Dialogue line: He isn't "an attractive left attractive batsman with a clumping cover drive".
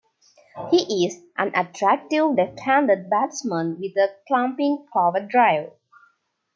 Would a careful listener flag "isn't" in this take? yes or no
yes